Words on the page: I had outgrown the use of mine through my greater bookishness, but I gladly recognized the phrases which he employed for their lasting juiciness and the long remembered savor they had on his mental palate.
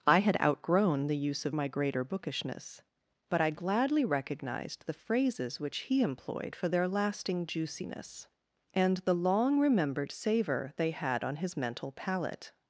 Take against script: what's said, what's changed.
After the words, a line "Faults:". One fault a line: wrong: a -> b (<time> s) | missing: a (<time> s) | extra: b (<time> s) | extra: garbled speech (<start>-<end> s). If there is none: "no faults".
I had outgrown the use of my greater bookishness, but I gladly recognized the phrases which he employed for their lasting juiciness and the long remembered savor they had on his mental palate.
Faults:
missing: mine through (1.5 s)